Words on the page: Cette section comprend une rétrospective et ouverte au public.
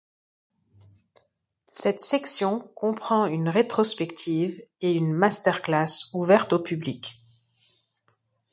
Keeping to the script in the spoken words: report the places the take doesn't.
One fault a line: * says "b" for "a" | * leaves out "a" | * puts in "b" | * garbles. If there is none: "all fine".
* puts in "une masterclass"